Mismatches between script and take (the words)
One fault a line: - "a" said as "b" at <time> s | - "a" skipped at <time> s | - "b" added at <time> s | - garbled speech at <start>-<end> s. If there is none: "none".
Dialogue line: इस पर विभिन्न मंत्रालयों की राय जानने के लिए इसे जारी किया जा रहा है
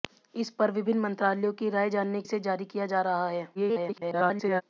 - "के लिए" skipped at 2.2 s
- garbled speech at 3.5-4.6 s